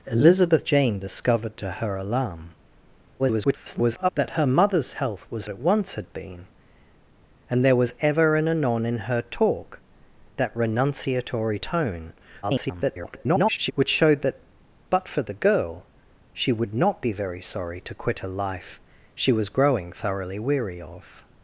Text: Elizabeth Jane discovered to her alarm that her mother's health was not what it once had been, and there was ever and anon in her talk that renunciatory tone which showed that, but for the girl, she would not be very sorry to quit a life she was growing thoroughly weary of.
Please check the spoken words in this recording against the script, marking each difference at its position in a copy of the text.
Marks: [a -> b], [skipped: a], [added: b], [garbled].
Elizabeth Jane discovered to her alarm [garbled] that her mother's health was [skipped: not what] it once had been, and there was ever and anon in her talk that renunciatory tone [garbled] which showed that, but for the girl, she would not be very sorry to quit a life she was growing thoroughly weary of.